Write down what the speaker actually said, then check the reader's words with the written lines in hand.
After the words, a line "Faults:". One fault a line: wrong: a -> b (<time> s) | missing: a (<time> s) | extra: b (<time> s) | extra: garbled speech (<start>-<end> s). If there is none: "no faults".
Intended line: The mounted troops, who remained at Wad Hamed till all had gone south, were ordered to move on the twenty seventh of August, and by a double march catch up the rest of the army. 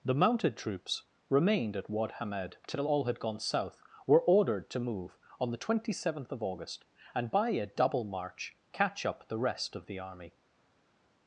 The mounted troops, remained at Wad Hamed till all had gone south, were ordered to move on the twenty seventh of August, and by a double march catch up the rest of the army.
Faults:
missing: who (1.0 s)